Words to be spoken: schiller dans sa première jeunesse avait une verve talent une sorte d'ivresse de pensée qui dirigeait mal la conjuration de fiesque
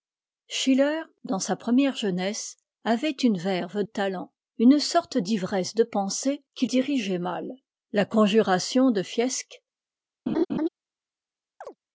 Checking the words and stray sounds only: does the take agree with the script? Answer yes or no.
no